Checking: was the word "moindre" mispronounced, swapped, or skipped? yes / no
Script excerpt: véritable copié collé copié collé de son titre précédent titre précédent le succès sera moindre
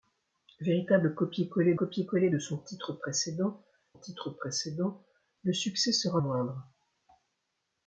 no